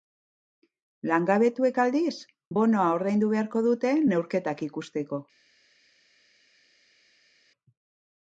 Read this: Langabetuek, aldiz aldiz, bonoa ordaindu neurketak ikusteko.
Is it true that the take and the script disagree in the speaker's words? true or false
true